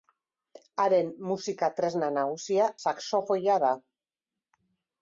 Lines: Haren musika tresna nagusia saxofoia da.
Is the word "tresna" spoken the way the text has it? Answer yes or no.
yes